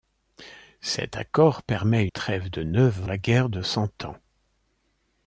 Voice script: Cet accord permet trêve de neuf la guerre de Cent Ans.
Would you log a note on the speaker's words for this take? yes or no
no